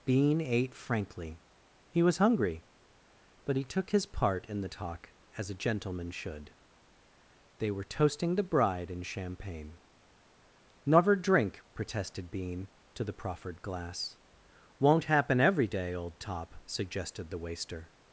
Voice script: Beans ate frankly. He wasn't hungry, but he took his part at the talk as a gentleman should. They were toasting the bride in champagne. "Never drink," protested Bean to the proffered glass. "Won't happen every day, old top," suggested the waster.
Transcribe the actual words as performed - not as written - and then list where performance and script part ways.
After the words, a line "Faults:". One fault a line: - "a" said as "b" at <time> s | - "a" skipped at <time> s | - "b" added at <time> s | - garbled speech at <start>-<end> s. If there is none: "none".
Bean ate frankly. He was hungry, but he took his part in the talk as a gentleman should. They were toasting the bride in champagne. "Never drink," protested Bean to the proffered glass. "Won't happen every day, old top," suggested the waster.
Faults:
- "Beans" said as "Bean" at 0.0 s
- "wasn't" said as "was" at 2.0 s
- "at" said as "in" at 4.5 s